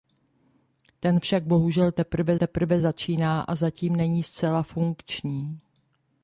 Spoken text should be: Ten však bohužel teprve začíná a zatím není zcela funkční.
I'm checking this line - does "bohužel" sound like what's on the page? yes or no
yes